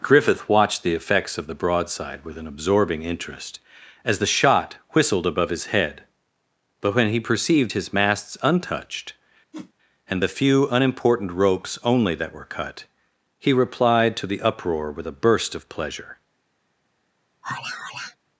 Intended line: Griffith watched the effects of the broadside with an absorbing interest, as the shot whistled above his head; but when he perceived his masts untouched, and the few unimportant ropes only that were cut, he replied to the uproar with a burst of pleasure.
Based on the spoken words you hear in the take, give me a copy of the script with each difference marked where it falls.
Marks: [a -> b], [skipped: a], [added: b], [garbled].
Griffith watched the effects of the broadside with an absorbing interest, as the shot whistled above his head; but when he perceived his masts untouched, and the few unimportant ropes only that were cut, he replied to the uproar with a burst of pleasure.